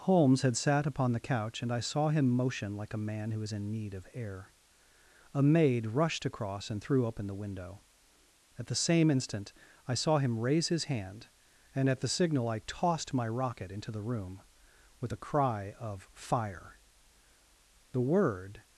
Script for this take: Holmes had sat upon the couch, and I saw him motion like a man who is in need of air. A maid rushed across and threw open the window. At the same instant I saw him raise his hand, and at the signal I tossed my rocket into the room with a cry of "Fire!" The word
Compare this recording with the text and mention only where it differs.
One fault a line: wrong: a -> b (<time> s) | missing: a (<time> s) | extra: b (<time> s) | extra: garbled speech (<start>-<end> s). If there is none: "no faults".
no faults